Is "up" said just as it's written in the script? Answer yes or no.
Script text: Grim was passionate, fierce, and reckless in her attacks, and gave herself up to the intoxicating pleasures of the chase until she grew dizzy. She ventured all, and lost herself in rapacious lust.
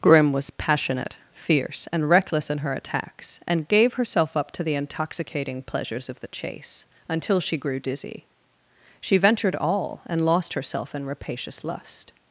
yes